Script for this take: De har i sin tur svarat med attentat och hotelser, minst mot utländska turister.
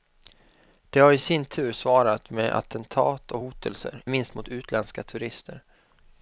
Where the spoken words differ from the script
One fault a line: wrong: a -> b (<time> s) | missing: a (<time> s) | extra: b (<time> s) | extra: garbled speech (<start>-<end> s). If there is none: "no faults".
no faults